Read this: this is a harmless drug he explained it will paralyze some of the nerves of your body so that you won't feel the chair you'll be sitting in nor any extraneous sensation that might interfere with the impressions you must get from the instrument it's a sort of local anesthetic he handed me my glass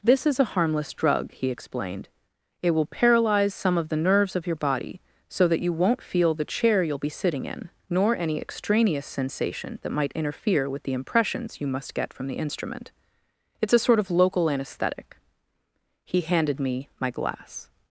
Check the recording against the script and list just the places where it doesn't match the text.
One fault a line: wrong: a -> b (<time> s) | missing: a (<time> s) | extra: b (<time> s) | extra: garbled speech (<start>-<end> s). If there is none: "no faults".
no faults